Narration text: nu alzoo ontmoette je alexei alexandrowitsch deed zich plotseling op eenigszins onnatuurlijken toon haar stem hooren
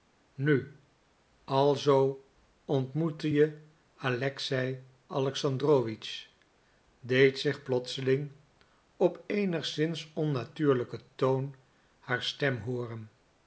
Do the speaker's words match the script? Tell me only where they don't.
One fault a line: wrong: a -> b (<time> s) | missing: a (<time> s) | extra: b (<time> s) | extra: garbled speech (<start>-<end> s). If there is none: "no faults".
no faults